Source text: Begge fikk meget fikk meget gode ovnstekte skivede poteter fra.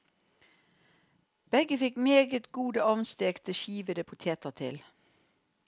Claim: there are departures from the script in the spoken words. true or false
true